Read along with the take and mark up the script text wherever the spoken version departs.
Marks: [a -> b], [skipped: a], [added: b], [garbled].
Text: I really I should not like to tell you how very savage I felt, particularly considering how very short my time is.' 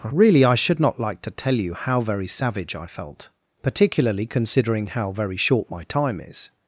[skipped: I] really I should not like to tell you how very savage I felt, particularly considering how very short my time is.'